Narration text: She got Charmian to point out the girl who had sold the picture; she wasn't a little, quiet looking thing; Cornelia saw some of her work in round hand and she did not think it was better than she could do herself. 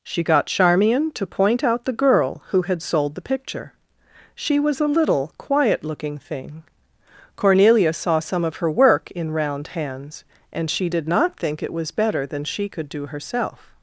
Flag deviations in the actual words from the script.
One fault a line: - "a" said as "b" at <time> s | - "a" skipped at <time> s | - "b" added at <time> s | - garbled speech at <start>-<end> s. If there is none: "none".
- "wasn't" said as "was" at 4.6 s
- "hand" said as "hands" at 9.7 s